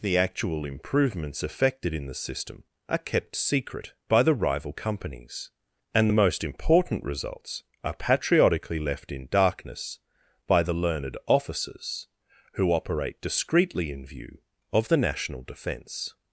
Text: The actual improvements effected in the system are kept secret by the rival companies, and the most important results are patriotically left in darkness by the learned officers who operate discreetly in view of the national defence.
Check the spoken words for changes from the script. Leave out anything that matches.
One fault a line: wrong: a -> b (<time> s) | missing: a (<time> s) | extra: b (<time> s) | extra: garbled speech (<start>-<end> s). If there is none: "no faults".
no faults